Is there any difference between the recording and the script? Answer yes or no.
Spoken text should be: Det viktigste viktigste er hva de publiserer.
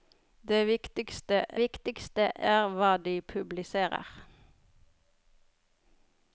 no